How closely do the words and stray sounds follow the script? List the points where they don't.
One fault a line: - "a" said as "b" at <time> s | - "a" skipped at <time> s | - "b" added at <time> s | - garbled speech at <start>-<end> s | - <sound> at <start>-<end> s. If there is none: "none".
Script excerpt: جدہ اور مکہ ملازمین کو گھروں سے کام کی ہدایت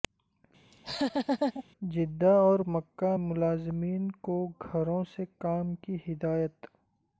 - laugh at 0.7-1.6 s